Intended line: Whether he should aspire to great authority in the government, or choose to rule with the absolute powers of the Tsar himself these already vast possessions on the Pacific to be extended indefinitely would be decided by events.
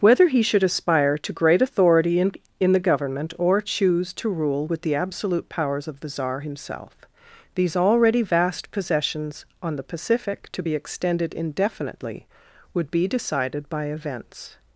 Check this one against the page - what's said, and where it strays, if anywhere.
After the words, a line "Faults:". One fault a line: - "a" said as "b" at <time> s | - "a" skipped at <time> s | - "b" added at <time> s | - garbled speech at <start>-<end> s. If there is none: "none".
Whether he should aspire to great authority in in the government, or choose to rule with the absolute powers of the Tsar himself these already vast possessions on the Pacific to be extended indefinitely would be decided by events.
Faults:
- "in" added at 2.6 s